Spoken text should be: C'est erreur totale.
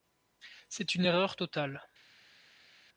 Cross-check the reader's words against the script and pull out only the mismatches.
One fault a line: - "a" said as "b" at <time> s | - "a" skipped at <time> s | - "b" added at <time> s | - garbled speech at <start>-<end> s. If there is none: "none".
- "une" added at 0.9 s